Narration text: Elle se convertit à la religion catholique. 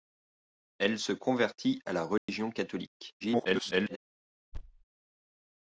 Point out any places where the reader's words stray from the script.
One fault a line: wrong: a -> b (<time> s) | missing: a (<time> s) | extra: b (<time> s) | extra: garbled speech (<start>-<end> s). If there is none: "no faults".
extra: garbled speech (3.2-4.0 s)